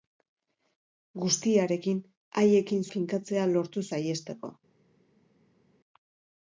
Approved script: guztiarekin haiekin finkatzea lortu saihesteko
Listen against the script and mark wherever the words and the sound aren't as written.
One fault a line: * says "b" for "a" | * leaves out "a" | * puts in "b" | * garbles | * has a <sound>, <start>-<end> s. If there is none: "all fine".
all fine